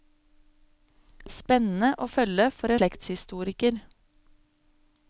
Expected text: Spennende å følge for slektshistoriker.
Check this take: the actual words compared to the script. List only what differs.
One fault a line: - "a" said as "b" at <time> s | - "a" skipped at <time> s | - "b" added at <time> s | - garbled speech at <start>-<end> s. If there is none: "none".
none